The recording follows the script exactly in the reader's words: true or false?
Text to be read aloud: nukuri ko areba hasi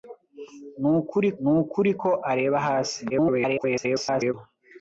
false